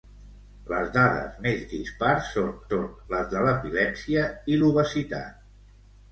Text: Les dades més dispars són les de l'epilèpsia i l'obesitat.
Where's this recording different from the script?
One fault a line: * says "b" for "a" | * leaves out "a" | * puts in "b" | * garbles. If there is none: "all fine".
* puts in "són"